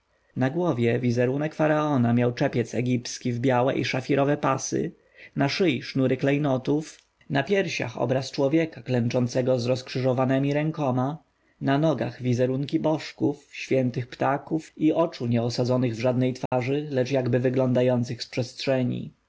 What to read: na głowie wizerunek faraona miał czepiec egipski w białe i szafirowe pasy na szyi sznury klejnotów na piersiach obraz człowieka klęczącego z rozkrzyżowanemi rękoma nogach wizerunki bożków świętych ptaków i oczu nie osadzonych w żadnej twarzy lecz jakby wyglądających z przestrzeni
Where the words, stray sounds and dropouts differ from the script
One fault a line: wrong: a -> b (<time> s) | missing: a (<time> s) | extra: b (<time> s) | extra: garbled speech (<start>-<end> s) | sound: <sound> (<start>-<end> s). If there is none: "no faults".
extra: na (11.6 s)
sound: dropout (16.5-16.5 s)